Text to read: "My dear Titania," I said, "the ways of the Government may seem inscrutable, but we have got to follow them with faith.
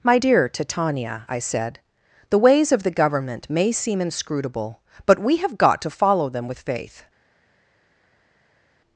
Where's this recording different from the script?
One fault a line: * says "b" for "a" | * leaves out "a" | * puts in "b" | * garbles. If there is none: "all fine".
all fine